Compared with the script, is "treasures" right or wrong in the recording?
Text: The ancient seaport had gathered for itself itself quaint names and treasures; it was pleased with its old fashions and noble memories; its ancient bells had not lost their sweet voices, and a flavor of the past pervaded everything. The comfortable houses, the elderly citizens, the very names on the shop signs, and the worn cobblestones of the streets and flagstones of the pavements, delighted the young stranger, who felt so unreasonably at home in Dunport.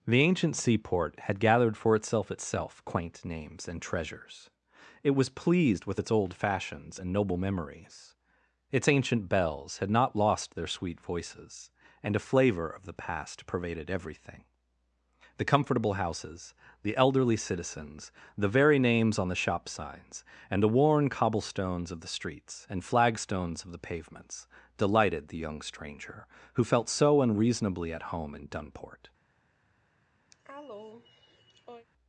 right